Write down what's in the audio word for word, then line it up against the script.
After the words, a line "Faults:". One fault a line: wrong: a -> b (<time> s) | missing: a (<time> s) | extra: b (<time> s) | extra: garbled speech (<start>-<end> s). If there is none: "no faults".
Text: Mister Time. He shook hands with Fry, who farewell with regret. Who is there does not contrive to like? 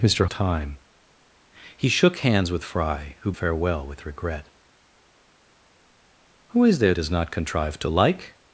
Mister Time. He shook hands with Fry, who farewell with regret. Who is there does not contrive to like?
Faults:
no faults